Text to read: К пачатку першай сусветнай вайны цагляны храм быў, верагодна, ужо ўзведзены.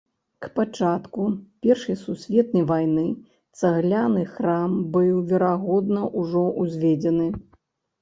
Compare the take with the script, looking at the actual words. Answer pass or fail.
pass